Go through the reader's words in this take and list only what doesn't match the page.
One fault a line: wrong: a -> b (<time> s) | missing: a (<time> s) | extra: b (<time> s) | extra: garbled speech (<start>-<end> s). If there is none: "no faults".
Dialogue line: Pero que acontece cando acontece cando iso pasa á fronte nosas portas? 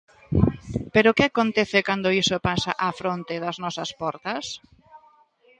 missing: acontece cando (2.2 s)
extra: das (3.4 s)